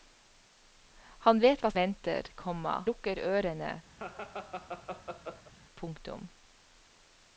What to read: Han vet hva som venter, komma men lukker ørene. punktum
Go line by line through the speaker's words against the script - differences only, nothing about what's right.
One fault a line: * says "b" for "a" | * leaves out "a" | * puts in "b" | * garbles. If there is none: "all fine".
* leaves out "som"
* leaves out "men"